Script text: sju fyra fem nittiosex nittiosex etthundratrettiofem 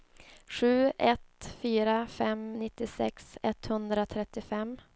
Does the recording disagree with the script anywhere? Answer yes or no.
yes